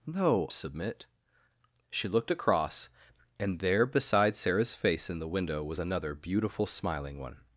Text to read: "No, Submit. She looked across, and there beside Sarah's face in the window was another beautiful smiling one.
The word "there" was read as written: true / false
true